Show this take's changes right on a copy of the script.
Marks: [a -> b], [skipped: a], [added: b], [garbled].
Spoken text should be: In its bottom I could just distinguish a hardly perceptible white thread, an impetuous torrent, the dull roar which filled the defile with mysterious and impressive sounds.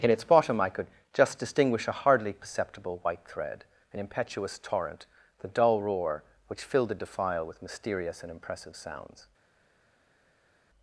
In its bottom I could just distinguish a hardly perceptible white thread, an impetuous torrent, the dull roar which filled the defile with mysterious and impressive sounds.